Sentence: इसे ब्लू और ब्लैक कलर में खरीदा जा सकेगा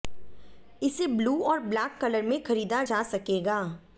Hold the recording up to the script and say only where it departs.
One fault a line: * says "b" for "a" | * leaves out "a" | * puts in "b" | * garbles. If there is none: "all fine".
all fine